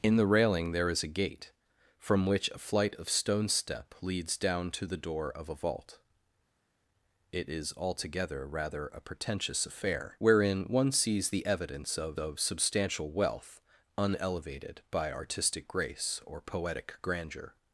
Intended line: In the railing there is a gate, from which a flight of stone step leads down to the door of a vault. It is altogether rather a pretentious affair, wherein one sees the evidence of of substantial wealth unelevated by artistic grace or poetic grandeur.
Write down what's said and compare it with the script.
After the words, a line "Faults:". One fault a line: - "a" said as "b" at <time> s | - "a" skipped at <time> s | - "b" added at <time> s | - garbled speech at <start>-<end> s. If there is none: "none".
In the railing there is a gate, from which a flight of stone step leads down to the door of a vault. It is altogether rather a pretentious affair, wherein one sees the evidence of of substantial wealth unelevated by artistic grace or poetic grandeur.
Faults:
none